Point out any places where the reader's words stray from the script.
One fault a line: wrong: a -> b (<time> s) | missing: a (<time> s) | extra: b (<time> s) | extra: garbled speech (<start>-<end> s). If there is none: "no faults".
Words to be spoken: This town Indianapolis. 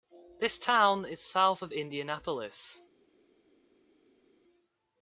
extra: is south of (1.1 s)